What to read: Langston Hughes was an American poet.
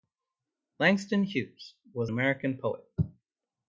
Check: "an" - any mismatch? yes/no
yes